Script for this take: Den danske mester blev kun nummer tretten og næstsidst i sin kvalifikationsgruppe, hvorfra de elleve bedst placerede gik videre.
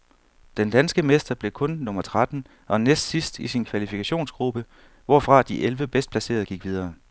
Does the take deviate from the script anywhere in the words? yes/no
no